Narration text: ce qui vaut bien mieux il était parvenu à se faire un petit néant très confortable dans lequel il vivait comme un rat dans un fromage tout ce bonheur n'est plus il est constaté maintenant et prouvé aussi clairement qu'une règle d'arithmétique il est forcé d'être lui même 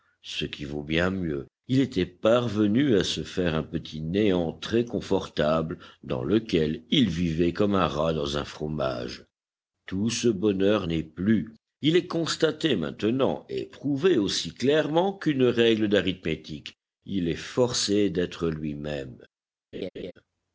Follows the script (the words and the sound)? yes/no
no